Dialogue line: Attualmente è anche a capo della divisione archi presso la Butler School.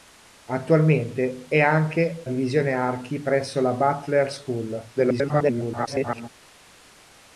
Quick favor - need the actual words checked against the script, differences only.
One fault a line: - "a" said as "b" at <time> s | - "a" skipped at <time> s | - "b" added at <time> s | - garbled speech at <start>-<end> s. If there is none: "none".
- "a capo della" skipped at 2.2 s
- garbled speech at 5.0-6.3 s